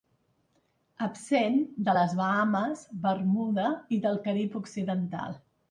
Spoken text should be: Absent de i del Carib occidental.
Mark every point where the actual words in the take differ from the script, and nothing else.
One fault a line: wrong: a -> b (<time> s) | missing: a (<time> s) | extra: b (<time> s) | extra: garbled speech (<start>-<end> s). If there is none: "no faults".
extra: les Bahames Bermuda (2.0 s)